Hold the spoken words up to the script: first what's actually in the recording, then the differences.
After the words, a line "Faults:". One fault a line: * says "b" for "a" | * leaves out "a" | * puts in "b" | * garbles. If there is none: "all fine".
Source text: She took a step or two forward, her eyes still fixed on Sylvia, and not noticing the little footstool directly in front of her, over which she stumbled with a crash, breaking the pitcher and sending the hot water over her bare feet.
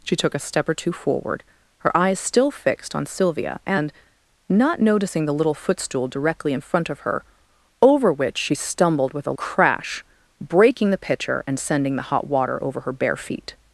She took a step or two forward, her eyes still fixed on Sylvia, and not noticing the little footstool directly in front of her, over which she stumbled with a crash, breaking the pitcher and sending the hot water over her bare feet.
Faults:
all fine